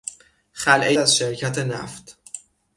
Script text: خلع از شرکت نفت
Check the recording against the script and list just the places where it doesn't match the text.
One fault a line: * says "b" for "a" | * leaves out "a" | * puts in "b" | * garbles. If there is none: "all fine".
all fine